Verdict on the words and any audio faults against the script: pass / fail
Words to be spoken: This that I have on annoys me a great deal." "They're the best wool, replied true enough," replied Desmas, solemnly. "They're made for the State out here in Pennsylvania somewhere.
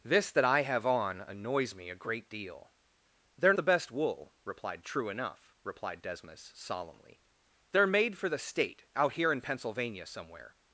pass